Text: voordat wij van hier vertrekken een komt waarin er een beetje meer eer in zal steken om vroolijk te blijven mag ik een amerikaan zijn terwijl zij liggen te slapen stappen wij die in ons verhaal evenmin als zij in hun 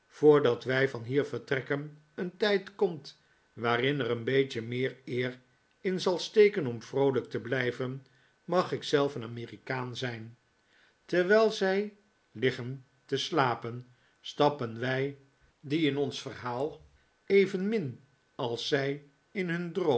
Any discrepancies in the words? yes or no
yes